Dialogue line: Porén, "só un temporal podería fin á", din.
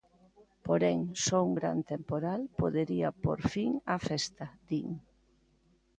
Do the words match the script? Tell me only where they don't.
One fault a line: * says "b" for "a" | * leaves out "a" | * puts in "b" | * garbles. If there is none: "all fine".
* puts in "gran"
* puts in "pór"
* puts in "festa"